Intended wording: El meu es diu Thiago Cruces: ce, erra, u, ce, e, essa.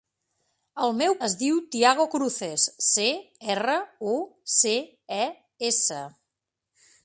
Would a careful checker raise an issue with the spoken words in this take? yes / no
no